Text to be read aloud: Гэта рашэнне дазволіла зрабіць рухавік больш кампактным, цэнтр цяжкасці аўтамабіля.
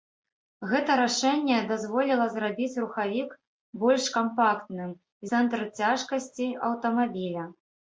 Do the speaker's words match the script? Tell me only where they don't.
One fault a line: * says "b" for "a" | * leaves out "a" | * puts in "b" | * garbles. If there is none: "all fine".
all fine